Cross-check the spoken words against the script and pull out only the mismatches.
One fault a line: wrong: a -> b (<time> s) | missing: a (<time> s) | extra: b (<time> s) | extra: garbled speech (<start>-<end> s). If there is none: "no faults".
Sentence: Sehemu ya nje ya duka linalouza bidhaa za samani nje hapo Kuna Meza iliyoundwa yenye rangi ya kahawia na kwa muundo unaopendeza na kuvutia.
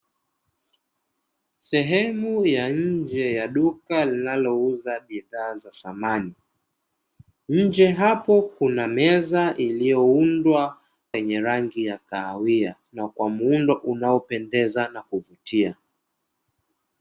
no faults